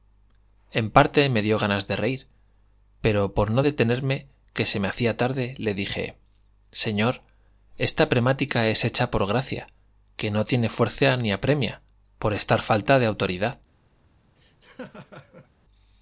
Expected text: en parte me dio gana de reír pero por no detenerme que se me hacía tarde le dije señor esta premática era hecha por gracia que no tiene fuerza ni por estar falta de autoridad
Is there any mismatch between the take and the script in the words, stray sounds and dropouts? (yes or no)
yes